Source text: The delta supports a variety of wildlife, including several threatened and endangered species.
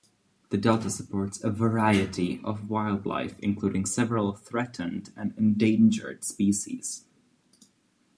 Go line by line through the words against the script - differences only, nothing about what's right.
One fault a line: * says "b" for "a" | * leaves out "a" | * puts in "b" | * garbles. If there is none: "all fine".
all fine